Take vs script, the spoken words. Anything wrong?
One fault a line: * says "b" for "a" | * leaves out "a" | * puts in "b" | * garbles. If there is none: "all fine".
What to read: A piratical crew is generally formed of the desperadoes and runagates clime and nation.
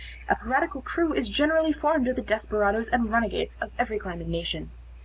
* puts in "of every"